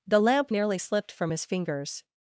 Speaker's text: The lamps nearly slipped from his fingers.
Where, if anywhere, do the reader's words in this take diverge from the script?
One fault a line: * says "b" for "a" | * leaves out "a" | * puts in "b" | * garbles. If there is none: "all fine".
* says "lamp" for "lamps"